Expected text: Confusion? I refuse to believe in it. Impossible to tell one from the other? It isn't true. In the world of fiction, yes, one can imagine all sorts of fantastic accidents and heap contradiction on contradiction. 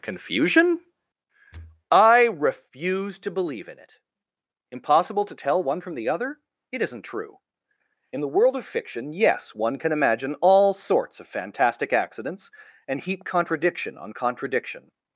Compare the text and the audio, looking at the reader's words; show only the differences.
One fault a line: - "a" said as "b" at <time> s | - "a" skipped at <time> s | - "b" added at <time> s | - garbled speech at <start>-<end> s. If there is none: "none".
none